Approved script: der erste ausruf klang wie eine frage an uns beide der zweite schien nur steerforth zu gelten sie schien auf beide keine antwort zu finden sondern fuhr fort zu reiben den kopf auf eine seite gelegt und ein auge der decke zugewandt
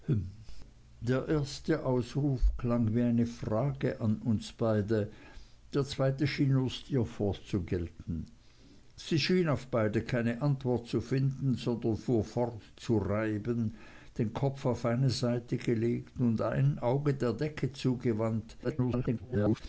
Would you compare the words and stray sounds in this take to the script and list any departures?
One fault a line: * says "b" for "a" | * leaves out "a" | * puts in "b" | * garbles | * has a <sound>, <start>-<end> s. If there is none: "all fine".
* garbles